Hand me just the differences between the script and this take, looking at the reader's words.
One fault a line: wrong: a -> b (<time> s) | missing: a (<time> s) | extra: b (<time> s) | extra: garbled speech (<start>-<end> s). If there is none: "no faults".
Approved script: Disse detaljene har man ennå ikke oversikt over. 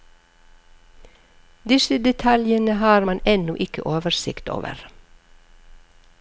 no faults